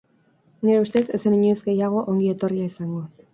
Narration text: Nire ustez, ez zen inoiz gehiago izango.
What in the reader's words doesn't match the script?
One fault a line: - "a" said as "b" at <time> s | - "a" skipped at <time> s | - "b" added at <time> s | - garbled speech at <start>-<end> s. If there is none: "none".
- "ongi etorria" added at 2.1 s